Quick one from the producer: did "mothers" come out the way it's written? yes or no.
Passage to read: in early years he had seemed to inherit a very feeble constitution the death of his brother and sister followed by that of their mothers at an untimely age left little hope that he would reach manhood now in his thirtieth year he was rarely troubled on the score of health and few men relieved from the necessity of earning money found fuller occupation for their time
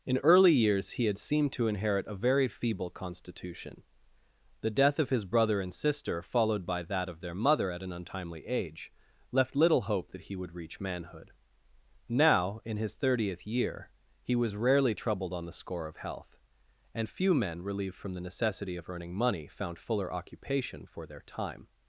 no